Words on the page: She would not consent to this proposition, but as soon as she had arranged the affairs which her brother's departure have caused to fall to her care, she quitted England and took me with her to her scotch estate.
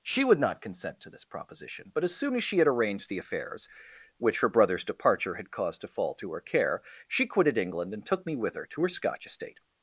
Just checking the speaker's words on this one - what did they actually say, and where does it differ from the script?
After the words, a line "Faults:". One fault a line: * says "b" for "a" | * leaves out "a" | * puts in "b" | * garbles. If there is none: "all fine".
She would not consent to this proposition, but as soon as she had arranged the affairs which her brother's departure had caused to fall to her care, she quitted England and took me with her to her scotch estate.
Faults:
* says "had" for "have"